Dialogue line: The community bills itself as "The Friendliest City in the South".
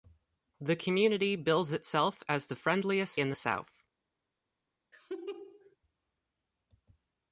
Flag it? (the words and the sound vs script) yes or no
yes